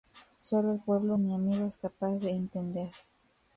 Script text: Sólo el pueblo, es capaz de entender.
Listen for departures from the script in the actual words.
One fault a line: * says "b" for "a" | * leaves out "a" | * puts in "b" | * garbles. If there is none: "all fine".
* puts in "mi amigo"